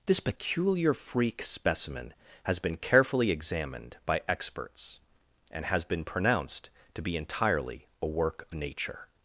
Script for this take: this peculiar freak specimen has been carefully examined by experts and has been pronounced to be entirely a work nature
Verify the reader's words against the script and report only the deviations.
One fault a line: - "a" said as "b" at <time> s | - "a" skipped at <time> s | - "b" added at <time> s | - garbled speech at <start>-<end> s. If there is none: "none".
none